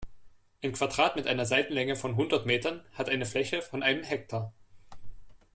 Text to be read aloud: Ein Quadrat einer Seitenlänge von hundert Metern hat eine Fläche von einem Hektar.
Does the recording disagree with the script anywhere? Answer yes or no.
yes